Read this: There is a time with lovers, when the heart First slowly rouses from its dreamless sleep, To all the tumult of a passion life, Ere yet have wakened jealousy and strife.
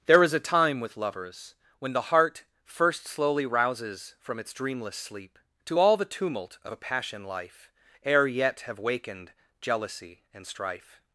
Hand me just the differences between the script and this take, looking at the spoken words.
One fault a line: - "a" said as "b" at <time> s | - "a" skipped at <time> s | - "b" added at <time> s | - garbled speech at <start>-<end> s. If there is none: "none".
none